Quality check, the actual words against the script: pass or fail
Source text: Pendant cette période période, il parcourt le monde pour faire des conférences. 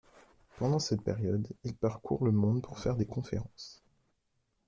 fail